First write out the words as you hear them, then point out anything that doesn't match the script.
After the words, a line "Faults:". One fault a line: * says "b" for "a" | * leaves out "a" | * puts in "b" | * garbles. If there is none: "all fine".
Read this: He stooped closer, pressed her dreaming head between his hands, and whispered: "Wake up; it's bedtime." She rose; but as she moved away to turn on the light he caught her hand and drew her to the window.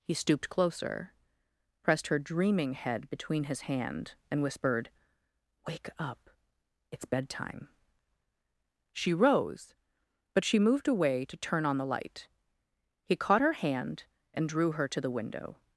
He stooped closer, pressed her dreaming head between his hand, and whispered: "Wake up; it's bedtime." She rose; but she moved away to turn on the light he caught her hand and drew her to the window.
Faults:
* says "hand" for "hands"
* leaves out "as"